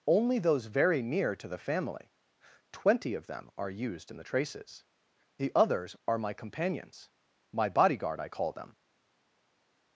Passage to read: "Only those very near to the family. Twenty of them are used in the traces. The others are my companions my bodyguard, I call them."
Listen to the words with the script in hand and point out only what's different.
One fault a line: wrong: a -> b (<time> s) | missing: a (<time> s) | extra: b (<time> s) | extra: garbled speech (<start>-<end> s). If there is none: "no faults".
no faults